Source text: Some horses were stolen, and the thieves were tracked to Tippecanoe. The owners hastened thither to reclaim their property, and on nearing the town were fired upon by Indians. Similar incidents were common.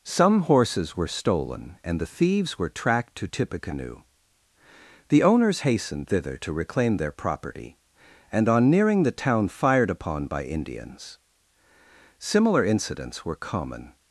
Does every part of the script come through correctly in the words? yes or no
no